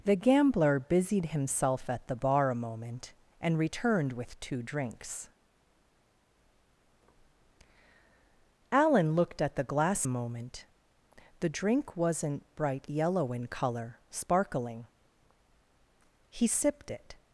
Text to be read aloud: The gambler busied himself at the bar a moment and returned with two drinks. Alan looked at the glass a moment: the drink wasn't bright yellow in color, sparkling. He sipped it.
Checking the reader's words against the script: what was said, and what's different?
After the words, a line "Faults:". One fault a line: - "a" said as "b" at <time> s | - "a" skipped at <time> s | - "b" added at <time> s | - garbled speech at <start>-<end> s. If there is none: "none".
The gambler busied himself at the bar a moment and returned with two drinks. Alan looked at the glass a moment: the drink wasn't bright yellow in color, sparkling. He sipped it.
Faults:
none